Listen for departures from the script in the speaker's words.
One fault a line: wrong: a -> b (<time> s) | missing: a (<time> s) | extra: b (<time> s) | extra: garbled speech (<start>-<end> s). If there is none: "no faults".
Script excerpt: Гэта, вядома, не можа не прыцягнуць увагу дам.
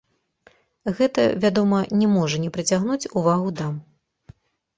no faults